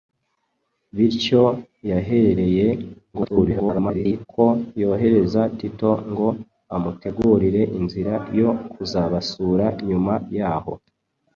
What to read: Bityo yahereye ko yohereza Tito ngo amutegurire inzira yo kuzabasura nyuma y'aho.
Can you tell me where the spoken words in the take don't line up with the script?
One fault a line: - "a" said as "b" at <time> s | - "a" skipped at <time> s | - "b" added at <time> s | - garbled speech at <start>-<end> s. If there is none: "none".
- garbled speech at 3.1-4.3 s